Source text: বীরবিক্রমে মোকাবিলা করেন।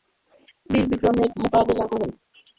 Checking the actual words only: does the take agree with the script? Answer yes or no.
yes